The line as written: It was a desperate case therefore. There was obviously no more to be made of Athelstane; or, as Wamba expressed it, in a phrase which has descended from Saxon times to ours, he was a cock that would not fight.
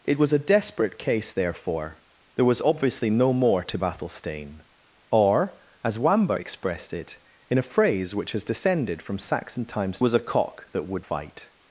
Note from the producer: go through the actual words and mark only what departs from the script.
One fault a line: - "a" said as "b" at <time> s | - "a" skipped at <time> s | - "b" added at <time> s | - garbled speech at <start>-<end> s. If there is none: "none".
- "be made of" skipped at 3.8 s
- "to ours he" skipped at 10.0 s
- "not" skipped at 11.1 s